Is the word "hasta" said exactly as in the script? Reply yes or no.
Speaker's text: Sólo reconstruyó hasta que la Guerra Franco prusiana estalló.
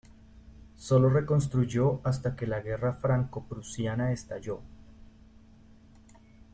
yes